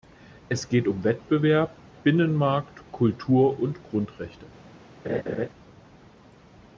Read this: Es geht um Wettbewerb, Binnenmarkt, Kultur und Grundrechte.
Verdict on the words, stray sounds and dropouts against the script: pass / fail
fail